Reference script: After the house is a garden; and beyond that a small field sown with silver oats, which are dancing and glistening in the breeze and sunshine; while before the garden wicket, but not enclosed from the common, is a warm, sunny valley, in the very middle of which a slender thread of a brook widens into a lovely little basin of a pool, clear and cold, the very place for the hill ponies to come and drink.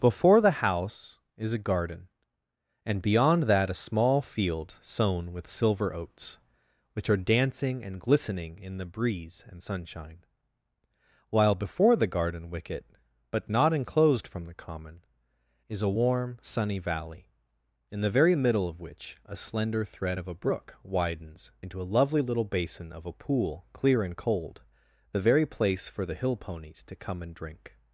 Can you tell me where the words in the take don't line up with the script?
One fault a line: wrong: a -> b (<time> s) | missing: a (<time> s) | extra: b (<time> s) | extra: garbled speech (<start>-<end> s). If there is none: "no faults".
wrong: After -> Before (0.0 s)